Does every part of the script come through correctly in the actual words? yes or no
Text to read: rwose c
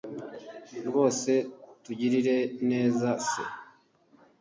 no